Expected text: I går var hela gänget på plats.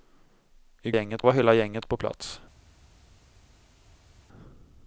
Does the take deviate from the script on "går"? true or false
true